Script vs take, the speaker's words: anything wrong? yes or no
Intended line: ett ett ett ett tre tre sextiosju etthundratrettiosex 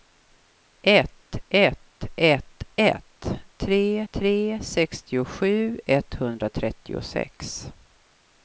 no